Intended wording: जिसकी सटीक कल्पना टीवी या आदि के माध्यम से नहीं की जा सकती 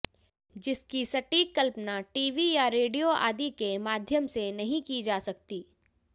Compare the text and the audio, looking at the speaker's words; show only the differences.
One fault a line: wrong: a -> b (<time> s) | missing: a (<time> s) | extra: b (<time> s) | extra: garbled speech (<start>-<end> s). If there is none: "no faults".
extra: रेडियो (2.8 s)